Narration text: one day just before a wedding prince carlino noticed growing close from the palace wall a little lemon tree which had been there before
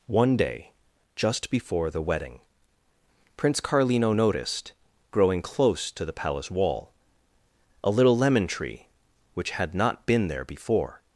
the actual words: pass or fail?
fail